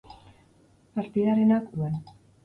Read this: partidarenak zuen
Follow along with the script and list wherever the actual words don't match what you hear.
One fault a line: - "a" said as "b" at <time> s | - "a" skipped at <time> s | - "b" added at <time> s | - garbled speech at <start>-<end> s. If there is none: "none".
none